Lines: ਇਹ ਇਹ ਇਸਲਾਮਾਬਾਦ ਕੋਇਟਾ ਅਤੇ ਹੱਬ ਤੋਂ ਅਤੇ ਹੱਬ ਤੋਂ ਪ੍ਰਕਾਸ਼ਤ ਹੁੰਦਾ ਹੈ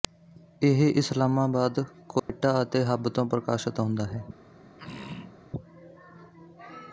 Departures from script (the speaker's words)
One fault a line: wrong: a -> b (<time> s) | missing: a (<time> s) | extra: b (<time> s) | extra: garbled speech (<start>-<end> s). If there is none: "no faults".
missing: ਇਹ (0.8 s)
missing: ਅਤੇ ਹੱਬ ਤੋਂ (3.2 s)